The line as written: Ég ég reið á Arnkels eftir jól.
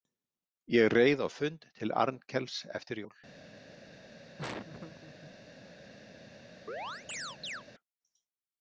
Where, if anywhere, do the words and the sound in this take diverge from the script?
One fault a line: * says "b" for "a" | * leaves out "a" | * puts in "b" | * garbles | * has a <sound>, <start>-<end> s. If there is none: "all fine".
* leaves out "ég"
* puts in "fund til"
* has a laugh, 4.4-5.3 s
* has a chirp, 6.7-7.6 s